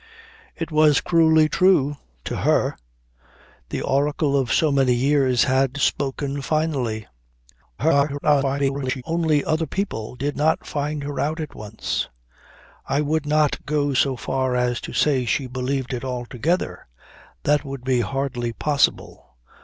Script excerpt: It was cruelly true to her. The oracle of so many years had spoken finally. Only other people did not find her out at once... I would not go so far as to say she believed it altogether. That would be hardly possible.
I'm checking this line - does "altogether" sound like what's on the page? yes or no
yes